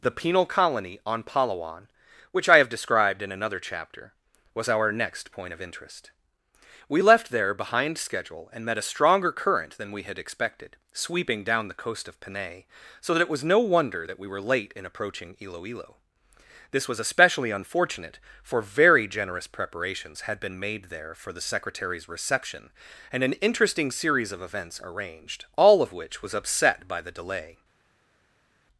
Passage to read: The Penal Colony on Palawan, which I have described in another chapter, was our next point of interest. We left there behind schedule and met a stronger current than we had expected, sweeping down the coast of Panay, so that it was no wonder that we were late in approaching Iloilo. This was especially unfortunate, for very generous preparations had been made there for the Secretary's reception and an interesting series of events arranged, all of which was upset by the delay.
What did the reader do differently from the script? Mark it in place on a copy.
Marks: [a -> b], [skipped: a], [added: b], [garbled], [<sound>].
The Penal Colony on Palawan, which I have described in another chapter, was our next point of interest. We left there behind schedule and met a stronger current than we had expected, sweeping down the coast of Panay, so that it was no wonder that we were late in approaching Iloilo. This was especially unfortunate, for very generous preparations had been made there for the Secretary's reception and an interesting series of events arranged, all of which was upset by the delay.